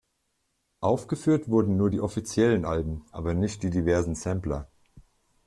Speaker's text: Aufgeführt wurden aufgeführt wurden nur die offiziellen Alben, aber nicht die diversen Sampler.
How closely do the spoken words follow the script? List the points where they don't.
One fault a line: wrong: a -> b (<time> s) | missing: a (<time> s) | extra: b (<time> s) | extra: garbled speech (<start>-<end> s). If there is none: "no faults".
missing: aufgeführt wurden (1.8 s)